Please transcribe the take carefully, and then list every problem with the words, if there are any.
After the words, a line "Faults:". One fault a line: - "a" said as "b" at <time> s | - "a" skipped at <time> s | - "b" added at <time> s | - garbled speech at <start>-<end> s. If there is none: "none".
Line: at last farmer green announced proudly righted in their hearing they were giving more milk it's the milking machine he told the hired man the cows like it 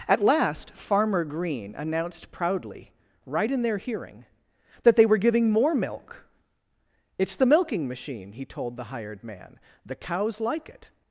at last farmer green announced proudly right in their hearing that they were giving more milk it's the milking machine he told the hired man the cows like it
Faults:
- "righted" said as "right" at 3.2 s
- "that" added at 4.8 s